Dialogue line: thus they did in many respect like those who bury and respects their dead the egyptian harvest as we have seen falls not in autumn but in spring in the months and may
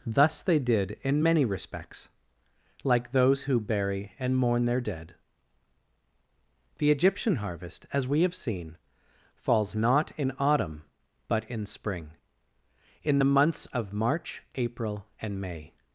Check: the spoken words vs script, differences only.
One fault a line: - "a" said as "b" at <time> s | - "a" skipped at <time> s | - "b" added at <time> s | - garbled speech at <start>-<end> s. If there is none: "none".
- "respect" said as "respects" at 1.4 s
- "respects" said as "mourn" at 4.4 s
- "of march april" added at 13.7 s